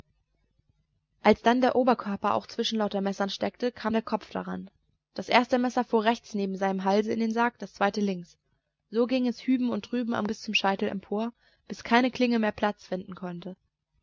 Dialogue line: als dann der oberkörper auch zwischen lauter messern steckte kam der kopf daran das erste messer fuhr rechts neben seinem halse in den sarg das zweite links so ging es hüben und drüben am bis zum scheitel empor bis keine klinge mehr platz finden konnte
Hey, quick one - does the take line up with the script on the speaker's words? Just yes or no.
yes